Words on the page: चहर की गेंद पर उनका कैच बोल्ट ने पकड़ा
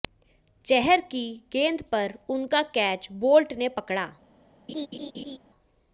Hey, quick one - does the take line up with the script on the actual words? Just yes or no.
yes